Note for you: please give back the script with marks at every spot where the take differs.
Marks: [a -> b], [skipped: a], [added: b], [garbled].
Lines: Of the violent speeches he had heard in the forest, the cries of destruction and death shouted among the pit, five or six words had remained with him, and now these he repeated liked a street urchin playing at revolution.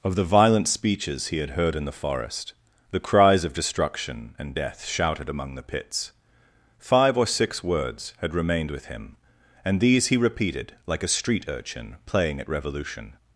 Of the violent speeches he had heard in the forest, the cries of destruction and death shouted among the [pit, -> pits] five or six words had remained with him, and [skipped: now] these he repeated [liked -> like] a street urchin playing at revolution.